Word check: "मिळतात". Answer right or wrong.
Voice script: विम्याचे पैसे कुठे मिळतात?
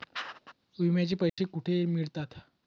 right